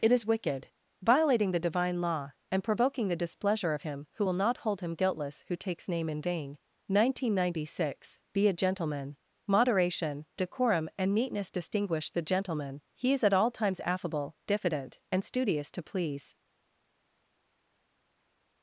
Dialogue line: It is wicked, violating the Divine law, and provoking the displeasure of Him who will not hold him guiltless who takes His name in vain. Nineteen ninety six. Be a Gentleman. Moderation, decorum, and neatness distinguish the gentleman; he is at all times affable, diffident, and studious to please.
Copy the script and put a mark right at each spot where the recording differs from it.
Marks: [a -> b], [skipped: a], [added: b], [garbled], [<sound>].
It is wicked, violating the Divine law, and provoking the displeasure of Him who will not hold him guiltless who takes [skipped: His] name in vain. Nineteen ninety six. Be a Gentleman. Moderation, decorum, and neatness distinguish the gentleman; he is at all times affable, diffident, and studious to please.